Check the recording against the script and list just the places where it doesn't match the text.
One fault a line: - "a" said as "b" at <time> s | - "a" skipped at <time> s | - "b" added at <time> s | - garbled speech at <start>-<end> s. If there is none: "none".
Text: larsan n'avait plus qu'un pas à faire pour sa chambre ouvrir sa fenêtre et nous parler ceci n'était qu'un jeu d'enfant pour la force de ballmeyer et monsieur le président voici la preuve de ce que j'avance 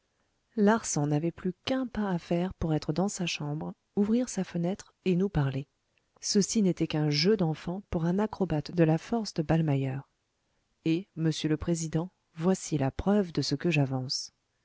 - "être dans" added at 2.7 s
- "un acrobate de" added at 8.1 s